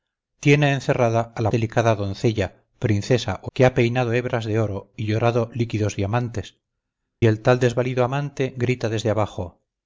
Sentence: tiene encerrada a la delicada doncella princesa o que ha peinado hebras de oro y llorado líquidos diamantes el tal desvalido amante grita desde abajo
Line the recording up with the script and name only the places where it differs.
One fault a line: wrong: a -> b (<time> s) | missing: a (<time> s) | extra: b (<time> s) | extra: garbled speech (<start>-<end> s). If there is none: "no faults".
no faults